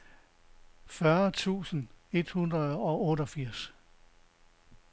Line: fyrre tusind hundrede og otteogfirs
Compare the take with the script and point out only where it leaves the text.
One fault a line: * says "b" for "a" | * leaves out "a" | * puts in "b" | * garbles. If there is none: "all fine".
* puts in "et"